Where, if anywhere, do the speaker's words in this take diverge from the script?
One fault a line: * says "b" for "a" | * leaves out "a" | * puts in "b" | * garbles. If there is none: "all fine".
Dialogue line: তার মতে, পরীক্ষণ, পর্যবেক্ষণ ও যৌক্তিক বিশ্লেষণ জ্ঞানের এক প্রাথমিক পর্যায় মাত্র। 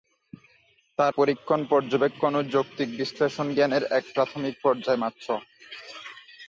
* leaves out "মতে"